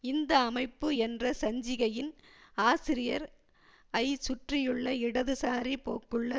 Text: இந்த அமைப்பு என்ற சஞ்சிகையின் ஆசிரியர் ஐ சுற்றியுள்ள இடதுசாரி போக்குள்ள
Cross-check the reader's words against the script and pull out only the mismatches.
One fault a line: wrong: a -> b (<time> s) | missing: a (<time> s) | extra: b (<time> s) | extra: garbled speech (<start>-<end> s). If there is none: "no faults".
no faults